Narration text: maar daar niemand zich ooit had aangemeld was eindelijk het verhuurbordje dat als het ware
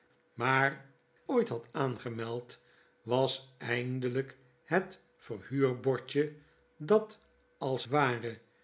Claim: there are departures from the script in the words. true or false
true